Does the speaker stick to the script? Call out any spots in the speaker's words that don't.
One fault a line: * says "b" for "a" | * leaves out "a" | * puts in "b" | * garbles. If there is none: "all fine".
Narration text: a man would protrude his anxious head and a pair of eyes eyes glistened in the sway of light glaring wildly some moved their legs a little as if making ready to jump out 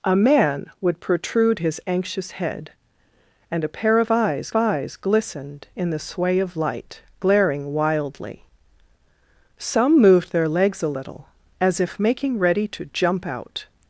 all fine